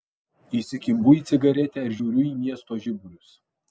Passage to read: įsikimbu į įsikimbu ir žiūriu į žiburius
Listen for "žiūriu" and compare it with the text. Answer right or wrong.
right